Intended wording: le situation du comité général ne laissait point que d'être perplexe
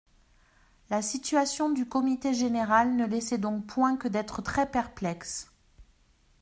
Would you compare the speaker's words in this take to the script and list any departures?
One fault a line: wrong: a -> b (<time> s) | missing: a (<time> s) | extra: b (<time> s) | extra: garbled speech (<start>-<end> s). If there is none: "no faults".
wrong: le -> la (0.9 s)
extra: donc (3.4 s)
extra: très (4.4 s)